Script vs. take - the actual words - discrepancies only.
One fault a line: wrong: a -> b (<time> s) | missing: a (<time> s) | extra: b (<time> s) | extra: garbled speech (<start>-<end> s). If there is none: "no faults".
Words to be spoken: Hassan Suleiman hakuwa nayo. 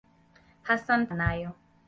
missing: Suleiman hakuwa (1.1 s)